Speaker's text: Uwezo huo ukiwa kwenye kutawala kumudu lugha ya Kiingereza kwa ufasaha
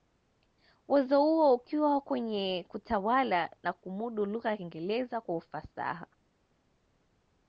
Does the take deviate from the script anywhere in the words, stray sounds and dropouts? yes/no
yes